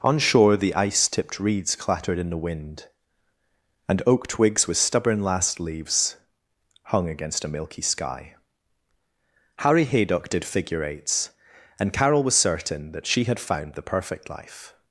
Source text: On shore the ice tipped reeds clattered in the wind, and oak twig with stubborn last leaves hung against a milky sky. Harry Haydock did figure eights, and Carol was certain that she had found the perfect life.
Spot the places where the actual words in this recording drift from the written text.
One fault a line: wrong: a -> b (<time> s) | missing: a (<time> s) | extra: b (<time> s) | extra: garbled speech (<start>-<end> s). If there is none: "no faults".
wrong: twig -> twigs (4.2 s)